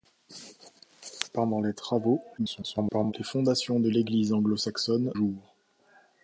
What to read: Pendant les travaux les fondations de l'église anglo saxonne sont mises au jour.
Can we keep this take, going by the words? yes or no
no